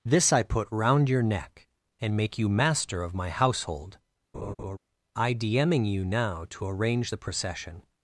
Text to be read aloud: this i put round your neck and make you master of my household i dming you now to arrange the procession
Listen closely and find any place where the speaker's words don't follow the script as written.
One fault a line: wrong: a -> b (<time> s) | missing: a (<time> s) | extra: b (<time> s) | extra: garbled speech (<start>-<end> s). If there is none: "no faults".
no faults